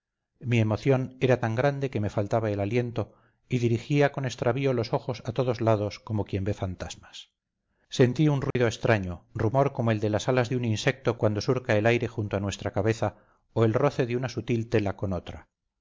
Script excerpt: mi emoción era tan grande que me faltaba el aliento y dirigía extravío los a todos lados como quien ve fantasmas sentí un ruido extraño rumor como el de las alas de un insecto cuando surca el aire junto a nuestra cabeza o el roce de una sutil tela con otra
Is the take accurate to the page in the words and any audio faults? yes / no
no